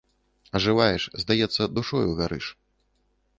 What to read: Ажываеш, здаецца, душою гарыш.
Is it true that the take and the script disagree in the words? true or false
false